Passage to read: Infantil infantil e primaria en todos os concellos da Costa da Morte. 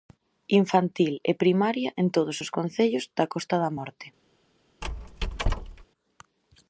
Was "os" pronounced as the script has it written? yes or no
yes